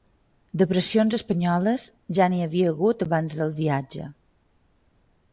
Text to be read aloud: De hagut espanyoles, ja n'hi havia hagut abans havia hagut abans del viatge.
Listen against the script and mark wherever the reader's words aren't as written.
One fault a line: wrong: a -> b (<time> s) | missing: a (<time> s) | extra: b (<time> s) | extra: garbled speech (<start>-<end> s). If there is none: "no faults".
wrong: hagut -> pressions (0.7 s)
missing: havia hagut abans (3.4 s)